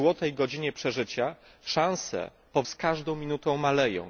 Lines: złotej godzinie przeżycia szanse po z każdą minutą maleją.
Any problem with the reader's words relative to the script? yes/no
no